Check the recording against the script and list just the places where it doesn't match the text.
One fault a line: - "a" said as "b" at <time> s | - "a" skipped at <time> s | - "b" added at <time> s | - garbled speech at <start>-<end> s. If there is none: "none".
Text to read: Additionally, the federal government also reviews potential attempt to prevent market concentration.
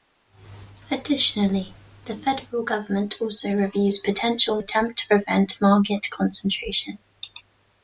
none